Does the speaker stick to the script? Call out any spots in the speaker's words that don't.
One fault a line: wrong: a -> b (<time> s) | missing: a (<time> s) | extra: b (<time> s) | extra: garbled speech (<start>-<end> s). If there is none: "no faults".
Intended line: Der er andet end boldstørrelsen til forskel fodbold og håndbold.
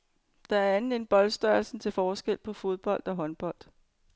extra: på (2.4 s)